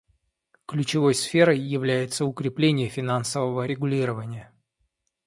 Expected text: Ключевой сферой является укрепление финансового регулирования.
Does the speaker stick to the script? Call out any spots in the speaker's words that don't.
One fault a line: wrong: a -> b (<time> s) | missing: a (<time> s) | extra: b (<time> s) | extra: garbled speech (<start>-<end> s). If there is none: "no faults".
no faults